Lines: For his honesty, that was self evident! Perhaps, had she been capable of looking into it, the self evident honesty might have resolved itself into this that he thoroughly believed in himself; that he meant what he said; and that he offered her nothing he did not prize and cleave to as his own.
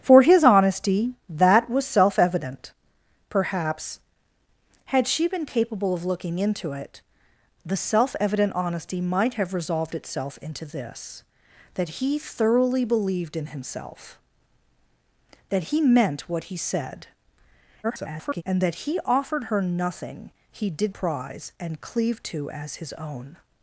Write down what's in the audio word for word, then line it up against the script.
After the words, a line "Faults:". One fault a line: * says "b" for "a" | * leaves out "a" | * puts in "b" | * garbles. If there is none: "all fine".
For his honesty, that was self evident! Perhaps, had she been capable of looking into it, the self evident honesty might have resolved itself into this that he thoroughly believed in himself; that he meant what he said; [garbled] and that he offered her nothing he did prize and cleave to as his own.
Faults:
* garbles
* leaves out "not"